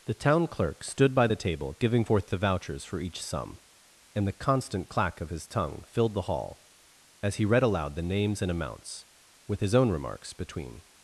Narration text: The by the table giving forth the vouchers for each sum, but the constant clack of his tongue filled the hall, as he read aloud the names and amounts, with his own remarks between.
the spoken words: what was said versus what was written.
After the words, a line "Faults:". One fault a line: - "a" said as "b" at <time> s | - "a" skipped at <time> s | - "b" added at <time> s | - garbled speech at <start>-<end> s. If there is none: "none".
The town clerk stood by the table giving forth the vouchers for each sum, and the constant clack of his tongue filled the hall, as he read aloud the names and amounts, with his own remarks between.
Faults:
- "town clerk stood" added at 0.1 s
- "but" said as "and" at 4.1 s